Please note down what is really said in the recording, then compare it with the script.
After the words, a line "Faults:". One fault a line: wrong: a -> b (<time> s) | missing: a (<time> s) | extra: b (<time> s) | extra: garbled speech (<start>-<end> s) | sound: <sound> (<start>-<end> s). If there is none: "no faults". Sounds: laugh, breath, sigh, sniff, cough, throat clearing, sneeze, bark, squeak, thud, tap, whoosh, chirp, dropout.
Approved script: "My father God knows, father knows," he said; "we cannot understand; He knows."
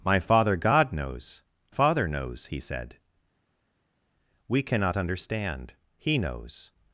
"My father God knows, father knows," he said; "we cannot understand; He knows."
Faults:
no faults